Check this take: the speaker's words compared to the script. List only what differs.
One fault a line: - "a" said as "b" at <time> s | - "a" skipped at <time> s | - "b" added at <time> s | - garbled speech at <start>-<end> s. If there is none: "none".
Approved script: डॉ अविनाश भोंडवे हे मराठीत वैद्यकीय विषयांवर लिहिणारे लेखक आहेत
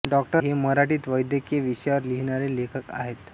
- "अविनाश भोंडवे" skipped at 0.2 s